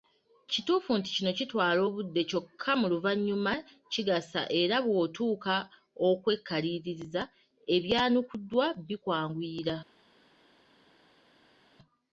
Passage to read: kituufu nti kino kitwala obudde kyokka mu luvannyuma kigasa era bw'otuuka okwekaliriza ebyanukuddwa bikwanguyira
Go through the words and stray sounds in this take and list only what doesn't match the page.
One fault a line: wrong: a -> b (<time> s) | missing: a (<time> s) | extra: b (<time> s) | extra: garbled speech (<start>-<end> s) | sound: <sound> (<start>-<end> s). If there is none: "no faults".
no faults